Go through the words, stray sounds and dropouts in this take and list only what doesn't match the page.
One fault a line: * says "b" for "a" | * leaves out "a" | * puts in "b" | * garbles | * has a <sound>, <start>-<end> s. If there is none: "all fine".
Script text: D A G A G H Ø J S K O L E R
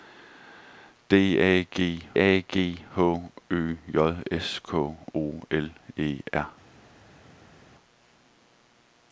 all fine